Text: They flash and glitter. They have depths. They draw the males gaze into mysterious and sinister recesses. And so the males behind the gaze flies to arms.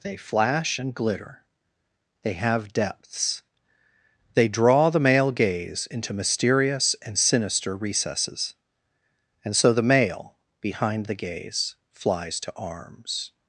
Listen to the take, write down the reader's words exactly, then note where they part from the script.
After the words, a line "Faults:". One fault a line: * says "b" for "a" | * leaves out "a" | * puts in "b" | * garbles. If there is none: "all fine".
They flash and glitter. They have depths. They draw the male gaze into mysterious and sinister recesses. And so the male behind the gaze flies to arms.
Faults:
* says "male" for "males"
* says "male" for "males"